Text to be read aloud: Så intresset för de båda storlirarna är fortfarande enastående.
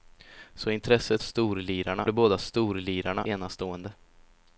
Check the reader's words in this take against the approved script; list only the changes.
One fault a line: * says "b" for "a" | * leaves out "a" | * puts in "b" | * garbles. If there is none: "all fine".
* says "storlirarna" for "för"
* leaves out "är fortfarande"